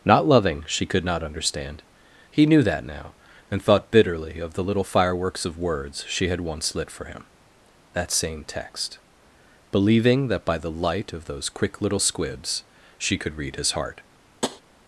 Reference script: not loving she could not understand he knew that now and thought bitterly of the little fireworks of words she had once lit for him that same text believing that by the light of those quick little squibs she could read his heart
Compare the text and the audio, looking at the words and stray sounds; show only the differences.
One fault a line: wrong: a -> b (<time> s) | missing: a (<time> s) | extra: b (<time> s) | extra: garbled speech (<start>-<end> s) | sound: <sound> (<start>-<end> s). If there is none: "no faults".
sound: tap (14.4-14.6 s)